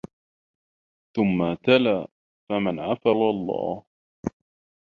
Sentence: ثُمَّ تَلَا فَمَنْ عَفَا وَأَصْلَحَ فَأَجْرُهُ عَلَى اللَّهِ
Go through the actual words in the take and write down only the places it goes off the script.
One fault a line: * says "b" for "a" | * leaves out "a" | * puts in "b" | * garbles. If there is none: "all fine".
* leaves out "وَأَصْلَحَ فَأَجْرُهُ"